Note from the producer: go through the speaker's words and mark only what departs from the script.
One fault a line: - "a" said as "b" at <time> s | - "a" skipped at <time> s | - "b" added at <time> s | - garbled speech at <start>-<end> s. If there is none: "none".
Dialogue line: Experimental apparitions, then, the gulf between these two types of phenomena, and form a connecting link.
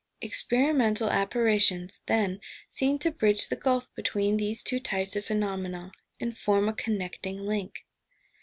- "seem to bridge" added at 2.7 s